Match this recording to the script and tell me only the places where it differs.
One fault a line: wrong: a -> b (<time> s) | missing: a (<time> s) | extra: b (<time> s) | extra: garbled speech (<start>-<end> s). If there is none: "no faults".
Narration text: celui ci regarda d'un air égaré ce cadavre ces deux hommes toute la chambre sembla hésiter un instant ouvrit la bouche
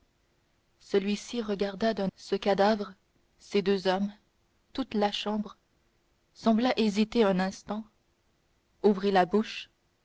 missing: air égaré (2.1 s)